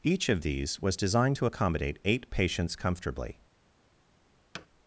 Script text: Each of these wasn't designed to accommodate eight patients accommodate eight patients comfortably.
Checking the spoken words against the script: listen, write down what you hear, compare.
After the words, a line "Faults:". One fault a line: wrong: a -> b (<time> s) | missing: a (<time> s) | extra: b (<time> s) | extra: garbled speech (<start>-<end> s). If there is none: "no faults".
Each of these was designed to accommodate eight patients comfortably.
Faults:
wrong: wasn't -> was (0.8 s)
missing: accommodate eight patients (2.8 s)